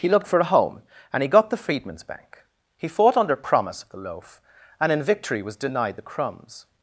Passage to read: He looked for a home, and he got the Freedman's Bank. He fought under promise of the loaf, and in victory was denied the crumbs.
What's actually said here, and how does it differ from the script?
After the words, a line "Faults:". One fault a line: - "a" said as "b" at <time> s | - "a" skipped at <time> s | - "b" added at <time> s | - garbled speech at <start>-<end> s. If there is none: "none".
He looked for a home, and he got the Freedman's Bank. He fought under promise of the loaf, and in victory was denied the crumbs.
Faults:
none